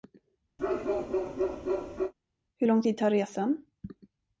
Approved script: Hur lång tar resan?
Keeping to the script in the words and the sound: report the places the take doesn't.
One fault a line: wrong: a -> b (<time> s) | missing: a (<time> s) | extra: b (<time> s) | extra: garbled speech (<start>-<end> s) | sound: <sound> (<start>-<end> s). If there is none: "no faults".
sound: bark (0.6-2.1 s)
extra: tid (2.8 s)